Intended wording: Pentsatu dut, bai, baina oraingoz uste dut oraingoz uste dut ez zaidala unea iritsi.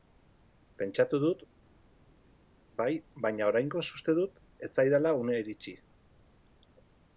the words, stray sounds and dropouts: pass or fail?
fail